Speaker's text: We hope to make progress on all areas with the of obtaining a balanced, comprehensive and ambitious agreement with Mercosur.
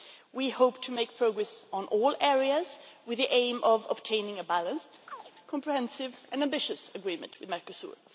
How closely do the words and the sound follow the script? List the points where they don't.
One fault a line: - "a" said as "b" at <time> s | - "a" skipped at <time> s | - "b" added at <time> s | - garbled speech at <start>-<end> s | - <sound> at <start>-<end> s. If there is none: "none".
- "aim" added at 3.3 s
- chirp at 5.1-5.3 s